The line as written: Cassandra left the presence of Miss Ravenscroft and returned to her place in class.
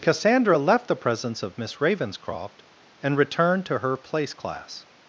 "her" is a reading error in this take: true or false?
false